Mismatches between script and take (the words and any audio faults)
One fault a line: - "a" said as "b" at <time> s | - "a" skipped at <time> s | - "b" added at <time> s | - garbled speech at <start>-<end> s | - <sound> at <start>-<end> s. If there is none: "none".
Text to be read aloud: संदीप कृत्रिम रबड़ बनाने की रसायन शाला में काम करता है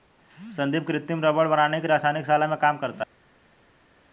none